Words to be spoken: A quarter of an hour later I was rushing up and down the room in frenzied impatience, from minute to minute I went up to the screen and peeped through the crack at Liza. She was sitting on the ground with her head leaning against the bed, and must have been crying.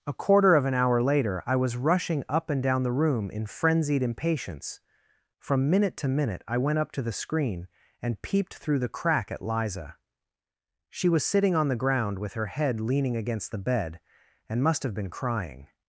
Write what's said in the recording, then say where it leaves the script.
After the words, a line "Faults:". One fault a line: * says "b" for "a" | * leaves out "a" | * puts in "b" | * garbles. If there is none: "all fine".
A quarter of an hour later I was rushing up and down the room in frenzied impatience, from minute to minute I went up to the screen and peeped through the crack at Liza. She was sitting on the ground with her head leaning against the bed, and must have been crying.
Faults:
all fine